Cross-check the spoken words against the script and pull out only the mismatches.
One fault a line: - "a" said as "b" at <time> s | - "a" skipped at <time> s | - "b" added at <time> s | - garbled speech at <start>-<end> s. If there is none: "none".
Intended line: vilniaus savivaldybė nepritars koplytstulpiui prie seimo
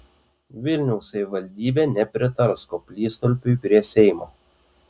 none